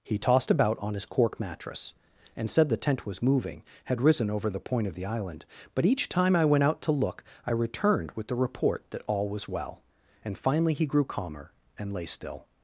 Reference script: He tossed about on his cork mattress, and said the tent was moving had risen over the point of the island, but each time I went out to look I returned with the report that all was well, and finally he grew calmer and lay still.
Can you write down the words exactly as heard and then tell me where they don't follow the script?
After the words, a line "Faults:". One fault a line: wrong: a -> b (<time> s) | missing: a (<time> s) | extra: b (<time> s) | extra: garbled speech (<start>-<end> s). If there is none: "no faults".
He tossed about on his cork mattress, and said the tent was moving had risen over the point of the island, but each time I went out to look I returned with the report that all was well, and finally he grew calmer and lay still.
Faults:
no faults